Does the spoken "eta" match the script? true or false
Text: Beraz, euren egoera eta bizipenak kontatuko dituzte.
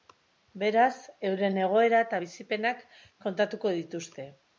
true